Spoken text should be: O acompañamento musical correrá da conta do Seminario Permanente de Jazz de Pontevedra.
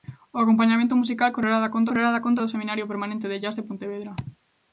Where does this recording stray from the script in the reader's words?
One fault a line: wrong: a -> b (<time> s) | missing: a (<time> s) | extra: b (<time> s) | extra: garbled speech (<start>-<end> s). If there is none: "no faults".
extra: correrá da conta (1.9 s)